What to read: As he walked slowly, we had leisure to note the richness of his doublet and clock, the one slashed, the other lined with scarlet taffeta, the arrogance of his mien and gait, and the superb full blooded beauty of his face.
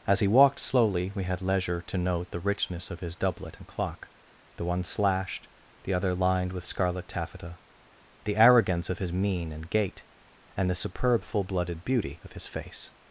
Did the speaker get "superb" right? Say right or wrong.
right